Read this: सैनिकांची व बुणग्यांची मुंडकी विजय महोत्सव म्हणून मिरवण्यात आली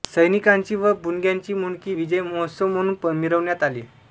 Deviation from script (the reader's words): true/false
false